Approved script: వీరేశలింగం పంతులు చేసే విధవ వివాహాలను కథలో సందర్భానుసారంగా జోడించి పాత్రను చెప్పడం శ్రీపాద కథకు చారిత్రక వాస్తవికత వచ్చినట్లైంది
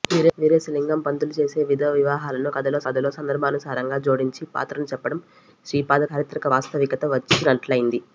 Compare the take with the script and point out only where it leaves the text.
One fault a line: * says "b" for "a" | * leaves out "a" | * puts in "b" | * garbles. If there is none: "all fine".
* puts in "కథలో"
* leaves out "కథకు"